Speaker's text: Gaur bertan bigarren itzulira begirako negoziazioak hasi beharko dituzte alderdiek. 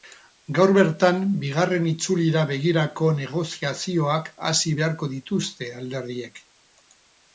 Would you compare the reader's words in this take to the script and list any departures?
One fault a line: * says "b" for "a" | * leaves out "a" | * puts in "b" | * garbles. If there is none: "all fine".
all fine